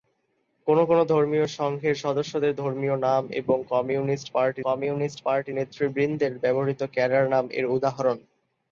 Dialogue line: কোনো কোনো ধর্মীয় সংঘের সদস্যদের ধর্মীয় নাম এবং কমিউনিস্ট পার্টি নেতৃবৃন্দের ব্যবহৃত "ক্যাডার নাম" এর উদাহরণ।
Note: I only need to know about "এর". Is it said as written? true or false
true